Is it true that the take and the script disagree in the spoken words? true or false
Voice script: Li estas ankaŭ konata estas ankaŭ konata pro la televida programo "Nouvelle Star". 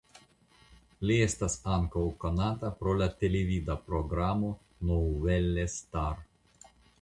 true